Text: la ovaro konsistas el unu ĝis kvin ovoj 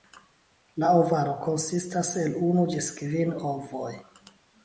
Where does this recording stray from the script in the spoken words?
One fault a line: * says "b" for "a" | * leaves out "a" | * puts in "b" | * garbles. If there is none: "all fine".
all fine